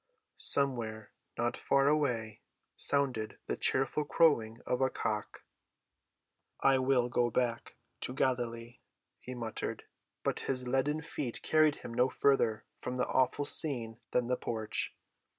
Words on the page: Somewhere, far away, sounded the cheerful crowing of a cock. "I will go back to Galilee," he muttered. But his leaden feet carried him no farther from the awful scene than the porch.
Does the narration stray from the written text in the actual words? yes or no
yes